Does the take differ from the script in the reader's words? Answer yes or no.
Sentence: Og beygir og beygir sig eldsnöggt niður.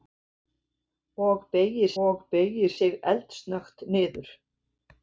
no